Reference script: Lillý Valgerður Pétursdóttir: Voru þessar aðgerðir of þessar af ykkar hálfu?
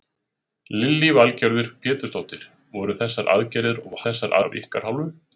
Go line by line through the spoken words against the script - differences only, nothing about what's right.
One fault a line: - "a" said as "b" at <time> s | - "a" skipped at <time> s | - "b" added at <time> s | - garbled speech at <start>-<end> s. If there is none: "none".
none